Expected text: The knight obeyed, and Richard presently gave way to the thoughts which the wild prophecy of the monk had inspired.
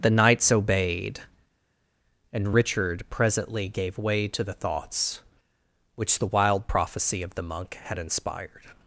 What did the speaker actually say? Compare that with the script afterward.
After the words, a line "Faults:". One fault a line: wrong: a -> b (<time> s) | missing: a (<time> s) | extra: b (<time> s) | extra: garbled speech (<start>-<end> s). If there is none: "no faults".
The knights obeyed, and Richard presently gave way to the thoughts which the wild prophecy of the monk had inspired.
Faults:
wrong: knight -> knights (0.1 s)